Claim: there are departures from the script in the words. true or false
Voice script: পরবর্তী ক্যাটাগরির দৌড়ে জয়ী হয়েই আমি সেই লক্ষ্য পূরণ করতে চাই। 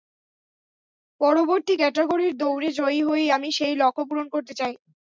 false